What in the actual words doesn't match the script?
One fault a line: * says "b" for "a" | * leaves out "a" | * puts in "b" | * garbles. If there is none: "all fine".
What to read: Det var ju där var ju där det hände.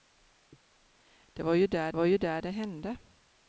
all fine